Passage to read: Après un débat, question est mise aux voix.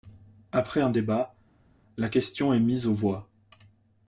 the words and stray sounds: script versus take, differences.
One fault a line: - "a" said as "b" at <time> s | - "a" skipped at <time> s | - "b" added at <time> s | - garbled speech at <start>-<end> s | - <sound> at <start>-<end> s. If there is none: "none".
- "la" added at 2.0 s